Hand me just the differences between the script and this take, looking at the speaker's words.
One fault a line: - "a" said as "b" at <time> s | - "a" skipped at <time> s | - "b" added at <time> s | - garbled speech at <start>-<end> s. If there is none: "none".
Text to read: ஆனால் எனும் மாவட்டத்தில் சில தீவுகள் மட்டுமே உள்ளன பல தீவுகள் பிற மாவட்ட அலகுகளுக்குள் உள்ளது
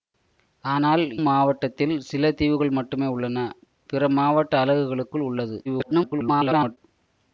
- "எனும்" skipped at 1.0 s
- "பல தீவுகள்" skipped at 3.4 s
- garbled speech at 5.6-6.8 s